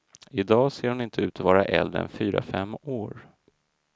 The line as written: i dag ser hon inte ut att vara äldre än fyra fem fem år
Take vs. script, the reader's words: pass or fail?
fail